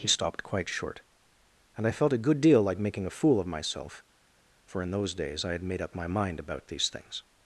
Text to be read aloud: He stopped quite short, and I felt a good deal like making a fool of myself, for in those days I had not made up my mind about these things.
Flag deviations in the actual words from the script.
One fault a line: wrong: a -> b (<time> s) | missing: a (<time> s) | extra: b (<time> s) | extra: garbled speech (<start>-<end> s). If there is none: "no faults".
missing: not (5.6 s)